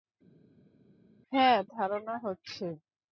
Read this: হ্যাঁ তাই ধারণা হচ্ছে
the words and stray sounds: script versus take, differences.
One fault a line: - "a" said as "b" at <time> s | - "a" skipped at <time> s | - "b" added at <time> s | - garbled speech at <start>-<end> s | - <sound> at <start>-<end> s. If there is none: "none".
- "তাই" skipped at 1.6 s